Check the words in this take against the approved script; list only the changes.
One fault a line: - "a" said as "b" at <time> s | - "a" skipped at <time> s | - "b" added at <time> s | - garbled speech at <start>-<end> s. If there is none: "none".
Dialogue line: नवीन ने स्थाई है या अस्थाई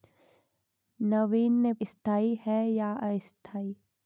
none